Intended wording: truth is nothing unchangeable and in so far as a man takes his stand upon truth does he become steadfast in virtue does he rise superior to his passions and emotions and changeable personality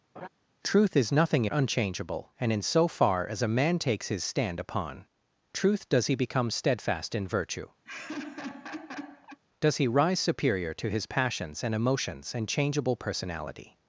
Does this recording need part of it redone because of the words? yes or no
no